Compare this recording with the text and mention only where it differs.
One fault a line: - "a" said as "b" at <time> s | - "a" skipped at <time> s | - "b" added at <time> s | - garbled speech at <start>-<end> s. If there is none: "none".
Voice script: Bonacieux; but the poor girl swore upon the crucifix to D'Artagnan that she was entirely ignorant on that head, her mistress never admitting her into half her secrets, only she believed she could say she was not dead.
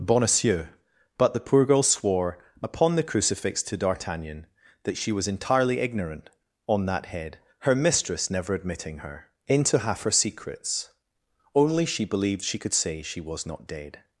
none